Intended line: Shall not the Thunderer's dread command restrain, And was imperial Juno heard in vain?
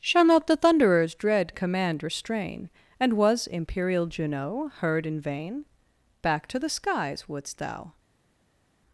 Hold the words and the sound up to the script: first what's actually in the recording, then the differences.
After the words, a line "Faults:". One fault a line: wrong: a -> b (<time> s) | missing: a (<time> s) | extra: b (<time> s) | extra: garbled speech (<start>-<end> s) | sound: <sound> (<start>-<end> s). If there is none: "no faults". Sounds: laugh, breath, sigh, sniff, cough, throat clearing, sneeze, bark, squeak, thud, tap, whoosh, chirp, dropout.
Shall not the Thunderer's dread command restrain, And was imperial Juno heard in vain? Back to the skies wouldst thou
Faults:
extra: Back to the skies wouldst thou (6.2 s)